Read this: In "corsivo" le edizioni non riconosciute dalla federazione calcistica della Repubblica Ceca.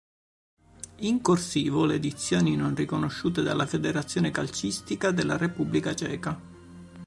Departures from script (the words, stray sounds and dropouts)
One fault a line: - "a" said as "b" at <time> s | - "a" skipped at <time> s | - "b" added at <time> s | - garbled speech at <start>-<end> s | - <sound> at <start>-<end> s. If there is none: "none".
none